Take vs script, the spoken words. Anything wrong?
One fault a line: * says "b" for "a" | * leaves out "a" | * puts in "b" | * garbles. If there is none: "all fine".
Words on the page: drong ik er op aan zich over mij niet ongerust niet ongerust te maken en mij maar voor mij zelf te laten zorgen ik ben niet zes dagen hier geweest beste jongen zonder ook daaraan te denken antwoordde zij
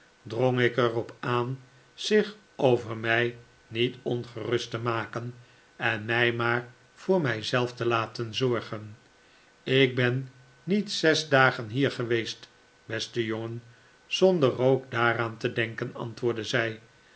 * leaves out "niet ongerust"